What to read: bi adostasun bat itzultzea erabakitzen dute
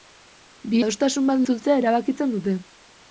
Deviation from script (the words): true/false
false